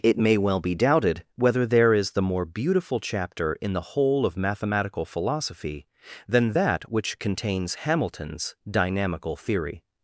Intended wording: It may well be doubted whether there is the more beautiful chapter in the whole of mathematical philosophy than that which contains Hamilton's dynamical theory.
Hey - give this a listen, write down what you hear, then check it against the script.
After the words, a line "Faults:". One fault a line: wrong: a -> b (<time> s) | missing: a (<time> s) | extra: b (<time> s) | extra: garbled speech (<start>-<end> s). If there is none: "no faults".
It may well be doubted whether there is the more beautiful chapter in the whole of mathematical philosophy than that which contains Hamilton's dynamical theory.
Faults:
no faults